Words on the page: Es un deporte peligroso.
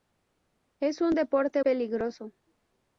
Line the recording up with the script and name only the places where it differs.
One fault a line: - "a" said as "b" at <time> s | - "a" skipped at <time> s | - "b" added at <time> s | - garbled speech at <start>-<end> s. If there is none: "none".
none